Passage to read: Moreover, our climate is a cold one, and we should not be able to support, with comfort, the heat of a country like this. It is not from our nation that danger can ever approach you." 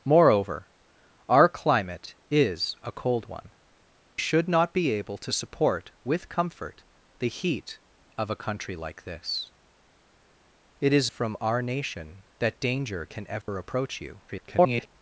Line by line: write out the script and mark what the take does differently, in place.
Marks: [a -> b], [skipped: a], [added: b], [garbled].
Moreover, our climate is a cold one, [skipped: and we] should not be able to support, with comfort, the heat of a country like this. It is [skipped: not] from our nation that danger can ever approach you." [garbled]